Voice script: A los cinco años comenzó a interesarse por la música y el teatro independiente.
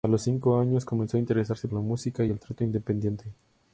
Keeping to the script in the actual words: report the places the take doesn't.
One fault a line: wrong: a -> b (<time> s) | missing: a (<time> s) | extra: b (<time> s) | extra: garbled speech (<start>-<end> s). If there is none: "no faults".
missing: por (1.7 s)